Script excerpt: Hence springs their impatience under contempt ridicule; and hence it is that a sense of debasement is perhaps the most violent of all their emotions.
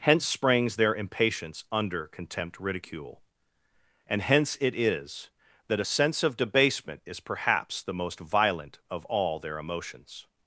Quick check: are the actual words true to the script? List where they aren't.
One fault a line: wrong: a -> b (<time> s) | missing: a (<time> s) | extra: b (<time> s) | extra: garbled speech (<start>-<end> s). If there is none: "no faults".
no faults